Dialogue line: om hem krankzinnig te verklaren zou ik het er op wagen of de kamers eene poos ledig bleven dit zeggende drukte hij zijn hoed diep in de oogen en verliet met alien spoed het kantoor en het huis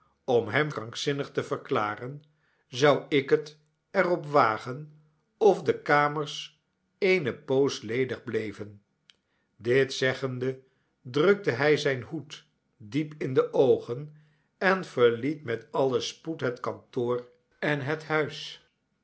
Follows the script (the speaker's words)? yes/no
yes